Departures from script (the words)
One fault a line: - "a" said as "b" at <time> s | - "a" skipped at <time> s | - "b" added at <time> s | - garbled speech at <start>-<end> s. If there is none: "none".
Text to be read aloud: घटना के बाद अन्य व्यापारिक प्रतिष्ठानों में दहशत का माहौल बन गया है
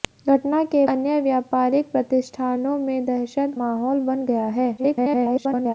- "बाद" skipped at 0.8 s
- "का" skipped at 3.6 s
- garbled speech at 4.8-5.7 s